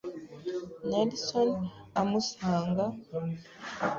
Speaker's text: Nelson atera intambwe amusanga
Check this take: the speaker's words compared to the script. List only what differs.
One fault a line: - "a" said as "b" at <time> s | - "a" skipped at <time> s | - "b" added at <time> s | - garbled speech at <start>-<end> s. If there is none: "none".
- "atera intambwe" skipped at 1.5 s